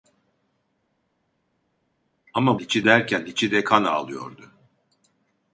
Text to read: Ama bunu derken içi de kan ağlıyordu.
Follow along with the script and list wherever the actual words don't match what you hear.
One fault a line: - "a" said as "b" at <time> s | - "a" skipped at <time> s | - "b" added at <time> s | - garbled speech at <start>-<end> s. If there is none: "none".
- "bunu" said as "içi" at 2.6 s